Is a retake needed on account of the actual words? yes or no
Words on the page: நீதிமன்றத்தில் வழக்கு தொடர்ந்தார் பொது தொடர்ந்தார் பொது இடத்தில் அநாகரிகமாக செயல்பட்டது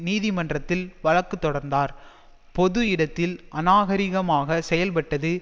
yes